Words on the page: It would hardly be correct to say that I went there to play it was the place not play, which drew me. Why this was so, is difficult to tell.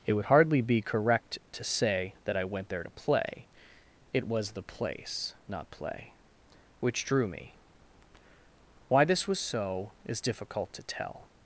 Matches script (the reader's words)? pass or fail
pass